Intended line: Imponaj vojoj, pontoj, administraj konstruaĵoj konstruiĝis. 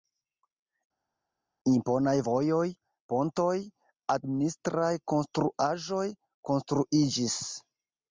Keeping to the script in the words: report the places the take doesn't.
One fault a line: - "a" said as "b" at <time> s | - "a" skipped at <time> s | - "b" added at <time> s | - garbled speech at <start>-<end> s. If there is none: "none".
none